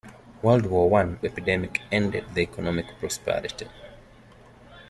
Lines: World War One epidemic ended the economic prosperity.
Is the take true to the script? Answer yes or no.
yes